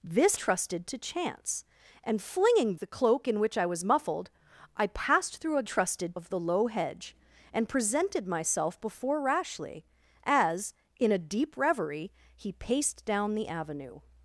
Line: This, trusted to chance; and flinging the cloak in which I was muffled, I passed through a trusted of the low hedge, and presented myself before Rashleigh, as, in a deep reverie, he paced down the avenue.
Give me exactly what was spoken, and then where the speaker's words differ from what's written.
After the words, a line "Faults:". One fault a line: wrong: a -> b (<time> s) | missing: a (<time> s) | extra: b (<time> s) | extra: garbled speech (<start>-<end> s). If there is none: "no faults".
This, trusted to chance; and flinging the cloak in which I was muffled, I passed through a trusted of the low hedge, and presented myself before Rashleigh, as, in a deep reverie, he paced down the avenue.
Faults:
no faults